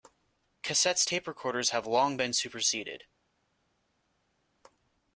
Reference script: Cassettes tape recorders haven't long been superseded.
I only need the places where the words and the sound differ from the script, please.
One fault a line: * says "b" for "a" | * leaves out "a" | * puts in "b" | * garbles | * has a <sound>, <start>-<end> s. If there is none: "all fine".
* says "have" for "haven't"